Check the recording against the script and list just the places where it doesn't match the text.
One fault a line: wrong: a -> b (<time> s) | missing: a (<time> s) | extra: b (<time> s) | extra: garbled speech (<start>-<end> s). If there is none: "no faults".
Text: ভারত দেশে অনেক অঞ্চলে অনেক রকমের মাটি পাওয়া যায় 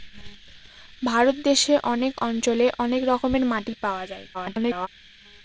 extra: garbled speech (4.3-4.9 s)